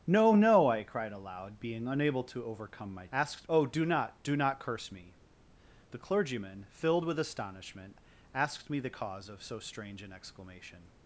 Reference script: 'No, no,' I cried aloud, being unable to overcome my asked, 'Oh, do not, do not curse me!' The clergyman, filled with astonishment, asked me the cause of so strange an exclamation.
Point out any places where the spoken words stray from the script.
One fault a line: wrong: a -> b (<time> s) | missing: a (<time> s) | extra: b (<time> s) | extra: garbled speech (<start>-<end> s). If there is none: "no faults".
no faults